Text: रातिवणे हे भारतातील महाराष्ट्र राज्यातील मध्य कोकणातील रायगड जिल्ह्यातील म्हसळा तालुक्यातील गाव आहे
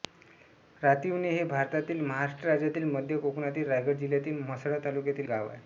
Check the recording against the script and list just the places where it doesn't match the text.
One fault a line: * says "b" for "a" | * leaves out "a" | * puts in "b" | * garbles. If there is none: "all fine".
all fine